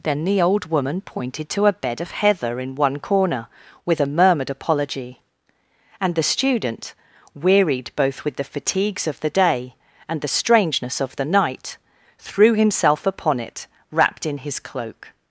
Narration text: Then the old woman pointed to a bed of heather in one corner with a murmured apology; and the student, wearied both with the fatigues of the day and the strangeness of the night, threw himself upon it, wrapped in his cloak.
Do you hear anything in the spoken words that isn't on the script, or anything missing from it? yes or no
no